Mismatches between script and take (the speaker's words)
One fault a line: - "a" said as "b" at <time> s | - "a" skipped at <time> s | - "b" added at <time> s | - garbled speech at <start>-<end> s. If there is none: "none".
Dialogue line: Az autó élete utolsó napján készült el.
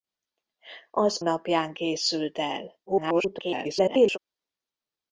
- "autó élete utolsó" skipped at 1.2 s
- garbled speech at 2.9-4.2 s